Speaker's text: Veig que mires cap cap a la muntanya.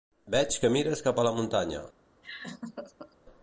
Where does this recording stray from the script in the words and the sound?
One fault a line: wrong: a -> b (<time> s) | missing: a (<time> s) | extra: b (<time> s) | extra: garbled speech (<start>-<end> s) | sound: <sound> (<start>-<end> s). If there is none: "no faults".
missing: cap (1.2 s)
sound: laugh (2.2-3.2 s)